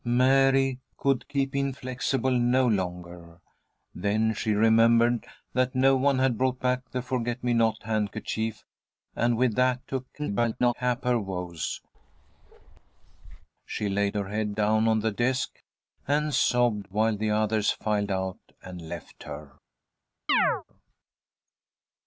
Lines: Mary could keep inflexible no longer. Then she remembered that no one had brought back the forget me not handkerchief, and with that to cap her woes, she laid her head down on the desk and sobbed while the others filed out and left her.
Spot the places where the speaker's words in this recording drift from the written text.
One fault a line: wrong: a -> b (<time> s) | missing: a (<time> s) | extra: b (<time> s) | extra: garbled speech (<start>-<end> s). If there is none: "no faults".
extra: garbled speech (10.2-10.7 s)